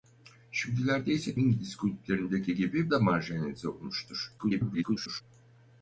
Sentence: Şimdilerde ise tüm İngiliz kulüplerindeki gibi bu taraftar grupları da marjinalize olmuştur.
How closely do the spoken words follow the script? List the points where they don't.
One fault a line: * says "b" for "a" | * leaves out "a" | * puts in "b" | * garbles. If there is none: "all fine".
* leaves out "tüm"
* leaves out "bu taraftar grupları"
* garbles